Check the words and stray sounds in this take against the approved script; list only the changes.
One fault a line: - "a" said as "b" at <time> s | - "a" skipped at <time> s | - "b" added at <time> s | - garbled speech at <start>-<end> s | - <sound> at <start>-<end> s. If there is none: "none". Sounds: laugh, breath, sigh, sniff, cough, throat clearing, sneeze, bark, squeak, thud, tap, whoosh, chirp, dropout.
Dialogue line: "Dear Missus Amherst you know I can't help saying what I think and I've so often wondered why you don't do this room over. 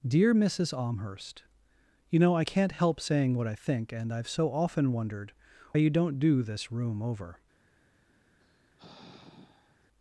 - "why" skipped at 5.3 s
- sigh at 8.4-9.9 s